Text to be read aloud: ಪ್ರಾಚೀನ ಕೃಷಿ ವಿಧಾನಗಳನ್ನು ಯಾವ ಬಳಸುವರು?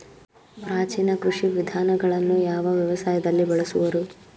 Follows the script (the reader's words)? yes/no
no